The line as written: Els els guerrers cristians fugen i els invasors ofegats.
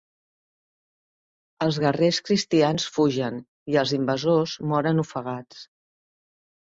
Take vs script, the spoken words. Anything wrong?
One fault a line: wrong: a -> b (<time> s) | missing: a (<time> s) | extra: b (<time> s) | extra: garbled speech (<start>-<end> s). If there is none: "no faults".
missing: els (1.8 s)
extra: moren (4.7 s)